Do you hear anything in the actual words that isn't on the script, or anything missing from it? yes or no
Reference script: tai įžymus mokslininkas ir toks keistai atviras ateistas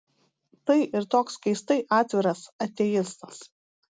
yes